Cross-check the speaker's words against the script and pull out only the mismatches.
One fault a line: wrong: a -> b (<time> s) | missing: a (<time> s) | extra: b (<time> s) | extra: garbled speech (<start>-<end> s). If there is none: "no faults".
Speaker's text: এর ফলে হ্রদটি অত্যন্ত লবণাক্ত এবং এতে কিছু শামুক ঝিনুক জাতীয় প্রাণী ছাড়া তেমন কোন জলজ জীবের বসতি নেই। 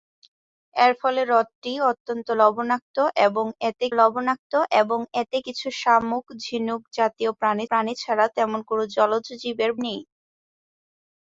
extra: লবণাক্ত এবং এতে (4.0 s)
extra: প্রাণী (7.7 s)
missing: বসতি (9.7 s)